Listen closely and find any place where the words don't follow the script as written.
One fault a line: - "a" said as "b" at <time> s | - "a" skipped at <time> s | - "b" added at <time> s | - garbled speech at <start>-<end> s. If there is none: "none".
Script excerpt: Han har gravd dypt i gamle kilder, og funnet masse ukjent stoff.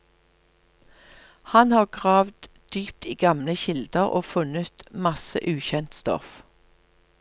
none